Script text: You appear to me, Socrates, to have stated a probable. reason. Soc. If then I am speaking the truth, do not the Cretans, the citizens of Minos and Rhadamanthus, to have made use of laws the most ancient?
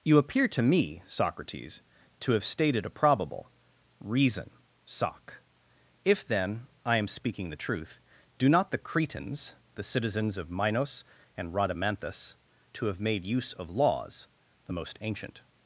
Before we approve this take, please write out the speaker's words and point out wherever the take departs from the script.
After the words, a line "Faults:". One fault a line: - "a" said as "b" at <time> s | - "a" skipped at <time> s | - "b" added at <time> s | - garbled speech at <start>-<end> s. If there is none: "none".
You appear to me, Socrates, to have stated a probable. reason. Soc. If then I am speaking the truth, do not the Cretans, the citizens of Minos and Rhadamanthus, to have made use of laws the most ancient?
Faults:
none